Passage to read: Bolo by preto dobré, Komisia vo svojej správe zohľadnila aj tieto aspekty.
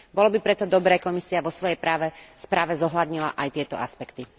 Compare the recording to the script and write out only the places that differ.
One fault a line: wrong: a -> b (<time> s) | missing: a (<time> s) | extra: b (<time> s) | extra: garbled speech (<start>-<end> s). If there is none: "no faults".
no faults